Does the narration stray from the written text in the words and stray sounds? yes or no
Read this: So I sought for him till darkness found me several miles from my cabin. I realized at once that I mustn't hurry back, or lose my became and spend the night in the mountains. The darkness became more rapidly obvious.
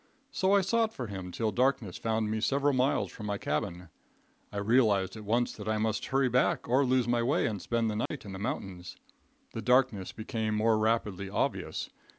yes